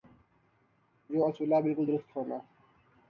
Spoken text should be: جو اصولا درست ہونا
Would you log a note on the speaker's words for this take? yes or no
yes